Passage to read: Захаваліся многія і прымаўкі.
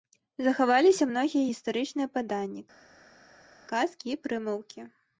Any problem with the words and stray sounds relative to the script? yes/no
yes